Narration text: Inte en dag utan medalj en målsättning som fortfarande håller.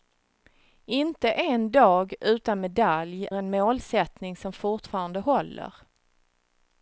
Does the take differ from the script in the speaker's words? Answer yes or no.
no